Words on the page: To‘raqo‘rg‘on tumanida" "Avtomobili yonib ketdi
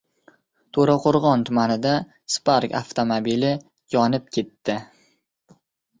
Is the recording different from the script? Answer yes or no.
yes